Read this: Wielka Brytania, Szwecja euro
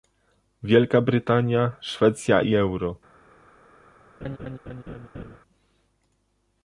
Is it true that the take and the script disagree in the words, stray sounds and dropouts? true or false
true